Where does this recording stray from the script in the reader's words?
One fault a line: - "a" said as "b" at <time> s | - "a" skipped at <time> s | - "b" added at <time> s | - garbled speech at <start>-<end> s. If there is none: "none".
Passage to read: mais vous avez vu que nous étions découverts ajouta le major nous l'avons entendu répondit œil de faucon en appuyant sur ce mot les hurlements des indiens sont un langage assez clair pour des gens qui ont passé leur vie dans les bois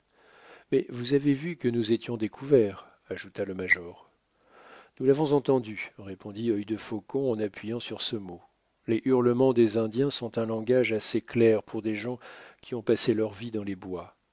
none